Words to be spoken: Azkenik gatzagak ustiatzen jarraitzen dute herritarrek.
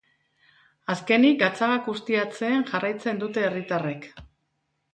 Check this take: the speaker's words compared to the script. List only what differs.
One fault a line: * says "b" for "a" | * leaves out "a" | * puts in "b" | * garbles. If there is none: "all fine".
all fine